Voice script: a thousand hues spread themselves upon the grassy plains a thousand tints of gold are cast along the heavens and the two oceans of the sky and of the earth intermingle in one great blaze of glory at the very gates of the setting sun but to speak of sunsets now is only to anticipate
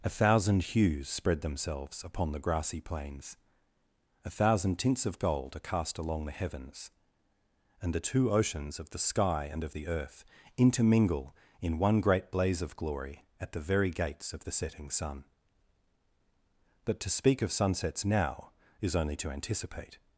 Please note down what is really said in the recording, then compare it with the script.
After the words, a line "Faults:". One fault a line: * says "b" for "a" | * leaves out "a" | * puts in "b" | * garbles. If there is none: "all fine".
a thousand hues spread themselves upon the grassy plains a thousand tints of gold are cast along the heavens and the two oceans of the sky and of the earth intermingle in one great blaze of glory at the very gates of the setting sun but to speak of sunsets now is only to anticipate
Faults:
all fine